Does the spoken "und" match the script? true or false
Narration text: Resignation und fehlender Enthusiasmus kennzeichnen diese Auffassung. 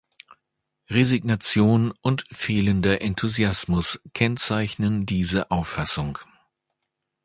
true